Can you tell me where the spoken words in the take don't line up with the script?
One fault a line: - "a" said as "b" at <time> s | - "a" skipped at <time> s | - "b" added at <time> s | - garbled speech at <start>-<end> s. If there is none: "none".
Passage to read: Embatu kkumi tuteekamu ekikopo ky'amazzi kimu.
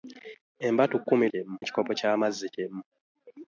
- "tuteekamu" said as "kimu" at 1.3 s